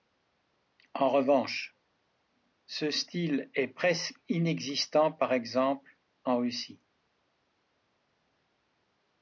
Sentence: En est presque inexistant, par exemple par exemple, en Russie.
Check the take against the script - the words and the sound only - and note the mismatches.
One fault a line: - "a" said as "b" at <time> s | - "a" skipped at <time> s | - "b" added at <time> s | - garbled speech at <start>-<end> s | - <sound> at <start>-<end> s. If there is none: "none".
- "revanche ce style" added at 1.1 s
- "par exemple" skipped at 6.0 s